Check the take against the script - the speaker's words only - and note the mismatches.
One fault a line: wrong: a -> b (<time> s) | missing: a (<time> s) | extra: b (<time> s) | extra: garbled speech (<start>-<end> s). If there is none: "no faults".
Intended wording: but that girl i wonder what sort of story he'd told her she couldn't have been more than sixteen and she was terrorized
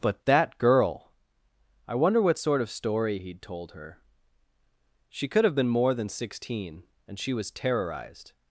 wrong: couldn't -> could (5.3 s)